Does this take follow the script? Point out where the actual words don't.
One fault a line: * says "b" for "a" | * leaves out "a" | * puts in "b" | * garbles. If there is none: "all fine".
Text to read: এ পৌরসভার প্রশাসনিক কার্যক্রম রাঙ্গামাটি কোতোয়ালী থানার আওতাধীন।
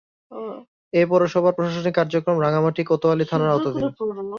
all fine